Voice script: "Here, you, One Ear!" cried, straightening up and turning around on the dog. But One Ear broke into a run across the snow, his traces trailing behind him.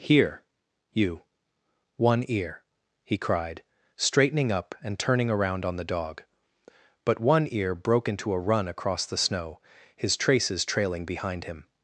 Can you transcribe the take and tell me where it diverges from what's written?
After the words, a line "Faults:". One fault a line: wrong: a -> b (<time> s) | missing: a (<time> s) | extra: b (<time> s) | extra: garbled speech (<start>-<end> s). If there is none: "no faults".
"Here, you, One Ear!" he cried, straightening up and turning around on the dog. But One Ear broke into a run across the snow, his traces trailing behind him.
Faults:
extra: he (3.0 s)